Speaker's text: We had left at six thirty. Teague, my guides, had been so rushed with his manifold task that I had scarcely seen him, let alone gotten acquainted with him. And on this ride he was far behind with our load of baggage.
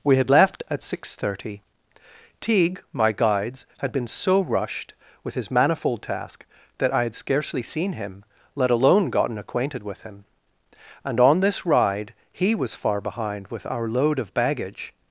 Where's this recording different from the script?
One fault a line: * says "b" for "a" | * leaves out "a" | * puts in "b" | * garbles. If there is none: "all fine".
all fine